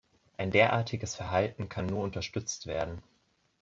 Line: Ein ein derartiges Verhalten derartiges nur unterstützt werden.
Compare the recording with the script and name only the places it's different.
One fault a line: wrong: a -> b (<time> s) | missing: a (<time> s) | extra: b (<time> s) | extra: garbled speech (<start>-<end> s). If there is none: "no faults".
missing: ein (0.5 s)
wrong: derartiges -> kann (1.7 s)